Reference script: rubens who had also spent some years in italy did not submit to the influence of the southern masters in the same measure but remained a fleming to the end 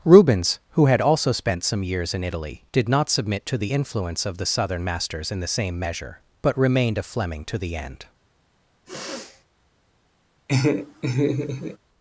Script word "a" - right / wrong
right